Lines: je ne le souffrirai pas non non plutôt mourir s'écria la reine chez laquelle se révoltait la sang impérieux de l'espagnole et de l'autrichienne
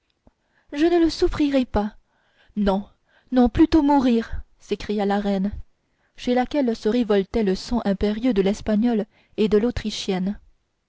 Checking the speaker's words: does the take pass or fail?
fail